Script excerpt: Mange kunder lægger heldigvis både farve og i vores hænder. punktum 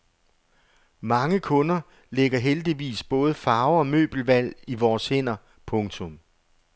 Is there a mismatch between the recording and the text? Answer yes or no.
yes